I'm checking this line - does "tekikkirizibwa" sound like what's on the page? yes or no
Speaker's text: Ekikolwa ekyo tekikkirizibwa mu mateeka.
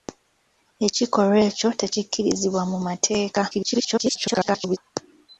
yes